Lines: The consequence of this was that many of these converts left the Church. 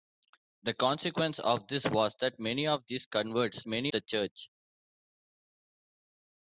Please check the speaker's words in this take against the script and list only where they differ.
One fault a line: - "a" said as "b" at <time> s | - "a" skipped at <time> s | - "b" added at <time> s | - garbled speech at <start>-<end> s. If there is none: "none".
- "left" said as "many" at 3.7 s